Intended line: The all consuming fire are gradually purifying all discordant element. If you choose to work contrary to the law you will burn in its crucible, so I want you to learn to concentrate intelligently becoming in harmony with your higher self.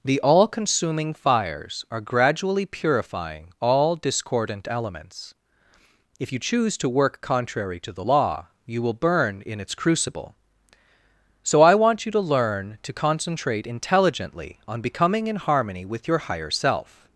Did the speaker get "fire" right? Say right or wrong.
wrong